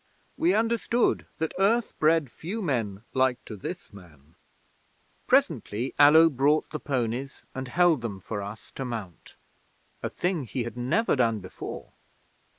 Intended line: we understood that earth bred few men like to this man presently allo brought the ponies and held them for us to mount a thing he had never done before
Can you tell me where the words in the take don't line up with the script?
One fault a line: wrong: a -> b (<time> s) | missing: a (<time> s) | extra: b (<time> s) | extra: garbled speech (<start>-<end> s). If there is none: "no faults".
no faults